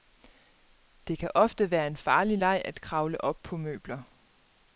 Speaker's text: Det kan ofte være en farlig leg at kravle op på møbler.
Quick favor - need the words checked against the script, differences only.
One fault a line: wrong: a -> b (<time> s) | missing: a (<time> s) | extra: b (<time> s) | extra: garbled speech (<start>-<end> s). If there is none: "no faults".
no faults